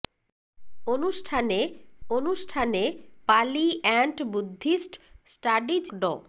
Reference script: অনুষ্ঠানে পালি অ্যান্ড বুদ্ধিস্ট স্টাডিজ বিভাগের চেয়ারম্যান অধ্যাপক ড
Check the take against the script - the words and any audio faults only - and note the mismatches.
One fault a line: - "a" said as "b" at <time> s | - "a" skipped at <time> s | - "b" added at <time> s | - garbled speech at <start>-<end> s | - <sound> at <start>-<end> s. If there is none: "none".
- "অনুষ্ঠানে" added at 2.1 s
- "বিভাগের চেয়ারম্যান অধ্যাপক" skipped at 5.8 s